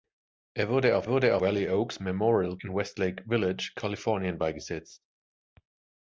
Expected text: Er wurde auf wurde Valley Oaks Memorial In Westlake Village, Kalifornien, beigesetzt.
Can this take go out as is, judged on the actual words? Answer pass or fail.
pass